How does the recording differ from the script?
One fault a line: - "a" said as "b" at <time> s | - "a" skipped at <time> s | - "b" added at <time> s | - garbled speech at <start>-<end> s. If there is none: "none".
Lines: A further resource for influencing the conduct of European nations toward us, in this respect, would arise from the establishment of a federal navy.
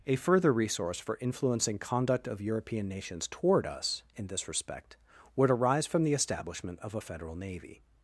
- "the" skipped at 1.8 s